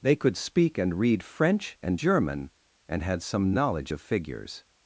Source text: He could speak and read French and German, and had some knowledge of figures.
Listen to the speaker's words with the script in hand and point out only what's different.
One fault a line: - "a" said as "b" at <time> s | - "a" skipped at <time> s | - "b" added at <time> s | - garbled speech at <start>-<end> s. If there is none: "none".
- "He" said as "They" at 0.0 s